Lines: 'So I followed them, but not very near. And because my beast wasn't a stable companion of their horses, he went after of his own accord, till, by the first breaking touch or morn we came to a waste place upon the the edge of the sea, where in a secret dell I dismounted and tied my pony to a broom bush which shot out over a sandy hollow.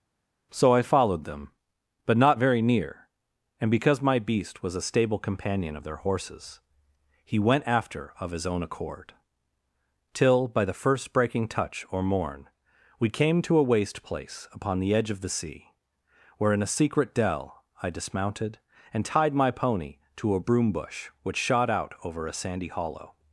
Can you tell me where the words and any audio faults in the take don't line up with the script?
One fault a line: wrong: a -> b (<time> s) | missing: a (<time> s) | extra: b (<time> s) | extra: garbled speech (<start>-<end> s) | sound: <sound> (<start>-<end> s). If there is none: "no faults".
wrong: wasn't -> was (4.6 s)
missing: the (14.9 s)